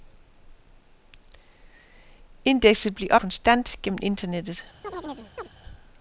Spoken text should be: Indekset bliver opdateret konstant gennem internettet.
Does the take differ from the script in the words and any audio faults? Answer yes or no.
yes